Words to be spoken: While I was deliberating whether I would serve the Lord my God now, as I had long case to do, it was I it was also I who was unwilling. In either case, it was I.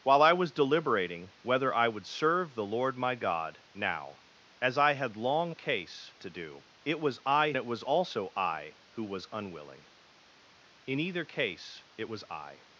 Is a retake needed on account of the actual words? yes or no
no